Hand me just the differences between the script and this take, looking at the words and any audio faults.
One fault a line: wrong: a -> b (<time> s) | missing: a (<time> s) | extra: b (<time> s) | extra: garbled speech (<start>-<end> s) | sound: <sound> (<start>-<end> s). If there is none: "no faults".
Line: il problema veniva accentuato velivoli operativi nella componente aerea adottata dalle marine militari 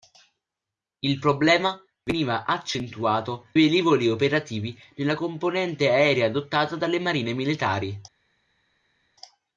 no faults